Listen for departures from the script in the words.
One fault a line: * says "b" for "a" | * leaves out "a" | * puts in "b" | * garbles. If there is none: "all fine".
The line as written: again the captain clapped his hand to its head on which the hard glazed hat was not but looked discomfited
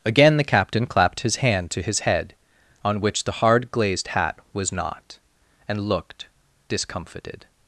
* says "his" for "its"
* says "and" for "but"